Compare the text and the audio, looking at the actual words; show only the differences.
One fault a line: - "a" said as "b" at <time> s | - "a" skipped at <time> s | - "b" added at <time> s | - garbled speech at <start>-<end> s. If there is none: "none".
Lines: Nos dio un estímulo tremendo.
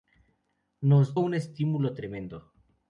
- "dio" skipped at 1.1 s